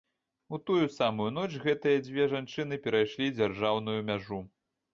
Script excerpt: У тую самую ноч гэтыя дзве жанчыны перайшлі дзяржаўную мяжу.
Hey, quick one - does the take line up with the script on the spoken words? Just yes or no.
yes